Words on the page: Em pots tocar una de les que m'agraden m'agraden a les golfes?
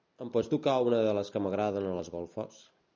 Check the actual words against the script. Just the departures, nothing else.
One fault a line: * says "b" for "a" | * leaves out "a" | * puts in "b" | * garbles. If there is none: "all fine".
* leaves out "m'agraden"